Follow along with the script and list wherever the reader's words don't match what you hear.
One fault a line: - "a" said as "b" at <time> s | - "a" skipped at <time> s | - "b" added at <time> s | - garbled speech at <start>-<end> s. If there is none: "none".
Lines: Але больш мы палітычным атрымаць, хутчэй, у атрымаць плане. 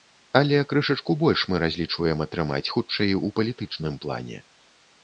- "крышачку" added at 0.7 s
- "палітычным" said as "разлічваем" at 1.6 s
- "атрымаць" said as "палітычным" at 3.4 s